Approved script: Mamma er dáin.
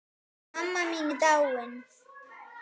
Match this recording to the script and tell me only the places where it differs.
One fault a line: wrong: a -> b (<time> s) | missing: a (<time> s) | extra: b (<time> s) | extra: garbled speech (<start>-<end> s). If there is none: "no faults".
extra: mín (0.9 s)